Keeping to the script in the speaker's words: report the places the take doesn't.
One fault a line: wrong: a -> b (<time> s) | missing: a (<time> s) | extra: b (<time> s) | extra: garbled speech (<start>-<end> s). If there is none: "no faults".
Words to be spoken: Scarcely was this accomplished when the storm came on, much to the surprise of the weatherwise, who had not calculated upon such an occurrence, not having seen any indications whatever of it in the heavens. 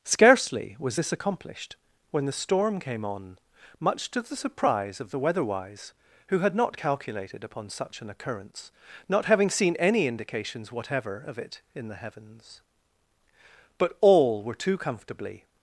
extra: But all were too comfortably (13.8 s)